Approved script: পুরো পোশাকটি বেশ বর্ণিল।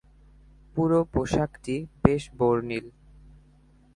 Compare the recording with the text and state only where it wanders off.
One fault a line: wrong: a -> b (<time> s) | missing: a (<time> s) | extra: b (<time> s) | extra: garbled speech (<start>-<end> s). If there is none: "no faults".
no faults